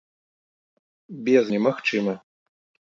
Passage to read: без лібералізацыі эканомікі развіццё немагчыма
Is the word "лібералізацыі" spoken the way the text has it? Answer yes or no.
no